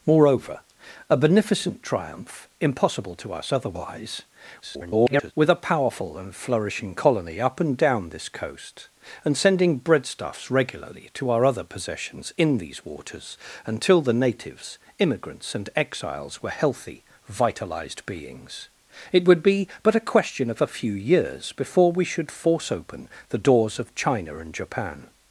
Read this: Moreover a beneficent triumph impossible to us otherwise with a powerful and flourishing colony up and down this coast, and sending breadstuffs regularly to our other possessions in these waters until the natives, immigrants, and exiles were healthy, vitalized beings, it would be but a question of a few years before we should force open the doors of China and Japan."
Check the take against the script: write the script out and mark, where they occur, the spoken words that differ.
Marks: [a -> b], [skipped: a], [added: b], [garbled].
Moreover a beneficent triumph impossible to us otherwise [garbled] with a powerful and flourishing colony up and down this coast, and sending breadstuffs regularly to our other possessions in these waters until the natives, immigrants, and exiles were healthy, vitalized beings, it would be but a question of a few years before we should force open the doors of China and Japan."